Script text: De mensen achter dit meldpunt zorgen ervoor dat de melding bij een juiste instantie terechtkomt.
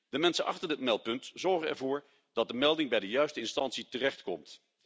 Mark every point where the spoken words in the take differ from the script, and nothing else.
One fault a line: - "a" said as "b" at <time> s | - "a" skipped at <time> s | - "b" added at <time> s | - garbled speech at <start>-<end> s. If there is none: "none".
- "een" said as "de" at 3.0 s